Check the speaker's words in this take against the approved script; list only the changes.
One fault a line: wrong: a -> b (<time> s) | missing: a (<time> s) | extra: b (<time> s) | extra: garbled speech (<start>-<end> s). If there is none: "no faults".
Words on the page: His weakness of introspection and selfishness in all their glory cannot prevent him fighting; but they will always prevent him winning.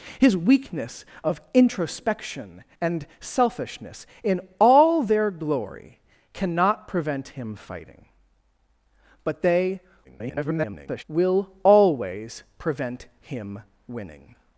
extra: garbled speech (10.0-11.0 s)